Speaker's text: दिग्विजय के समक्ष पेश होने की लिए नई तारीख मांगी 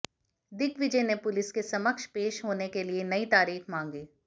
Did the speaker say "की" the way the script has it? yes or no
no